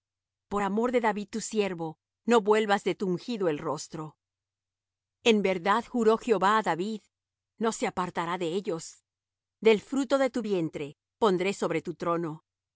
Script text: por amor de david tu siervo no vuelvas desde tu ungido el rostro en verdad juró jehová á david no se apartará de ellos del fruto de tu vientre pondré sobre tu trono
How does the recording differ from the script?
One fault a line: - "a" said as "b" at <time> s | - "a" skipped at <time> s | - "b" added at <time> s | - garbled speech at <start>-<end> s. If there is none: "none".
- "desde" said as "de" at 2.8 s